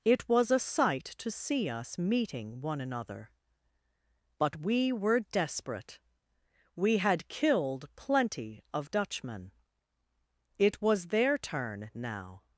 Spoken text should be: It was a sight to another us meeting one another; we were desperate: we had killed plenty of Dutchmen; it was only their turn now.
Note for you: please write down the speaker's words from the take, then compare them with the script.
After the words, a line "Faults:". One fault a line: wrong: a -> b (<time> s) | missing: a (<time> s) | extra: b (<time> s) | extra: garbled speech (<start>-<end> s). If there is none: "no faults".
It was a sight to see us meeting one another; but we were desperate: we had killed plenty of Dutchmen; it was their turn now.
Faults:
wrong: another -> see (1.3 s)
extra: but (4.4 s)
missing: only (11.1 s)